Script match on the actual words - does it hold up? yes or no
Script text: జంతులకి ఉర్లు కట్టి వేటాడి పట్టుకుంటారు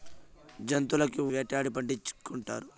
no